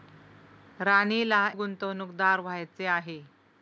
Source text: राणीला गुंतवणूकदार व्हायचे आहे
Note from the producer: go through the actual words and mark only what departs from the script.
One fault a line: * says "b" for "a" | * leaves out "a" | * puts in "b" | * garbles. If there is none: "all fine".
all fine